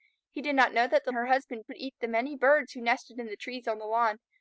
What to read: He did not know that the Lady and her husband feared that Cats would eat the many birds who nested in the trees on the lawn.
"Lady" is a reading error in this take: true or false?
true